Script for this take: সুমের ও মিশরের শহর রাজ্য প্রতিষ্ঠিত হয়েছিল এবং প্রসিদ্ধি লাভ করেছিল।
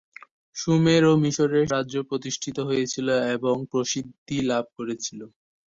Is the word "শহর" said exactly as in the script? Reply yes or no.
no